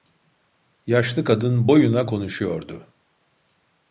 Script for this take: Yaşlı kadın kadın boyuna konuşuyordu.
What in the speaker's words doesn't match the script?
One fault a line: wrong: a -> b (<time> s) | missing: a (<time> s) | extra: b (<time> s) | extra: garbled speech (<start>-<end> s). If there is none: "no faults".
missing: kadın (1.7 s)